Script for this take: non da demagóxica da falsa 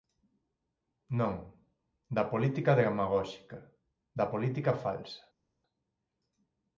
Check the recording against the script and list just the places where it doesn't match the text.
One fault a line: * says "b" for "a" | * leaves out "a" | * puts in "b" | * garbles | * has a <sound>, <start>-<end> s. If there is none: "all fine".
* puts in "política"
* puts in "política"